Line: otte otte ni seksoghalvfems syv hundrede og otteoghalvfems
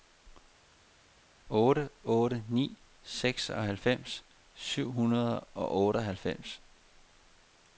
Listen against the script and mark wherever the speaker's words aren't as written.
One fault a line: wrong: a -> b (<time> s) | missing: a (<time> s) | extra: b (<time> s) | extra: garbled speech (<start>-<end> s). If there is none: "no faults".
no faults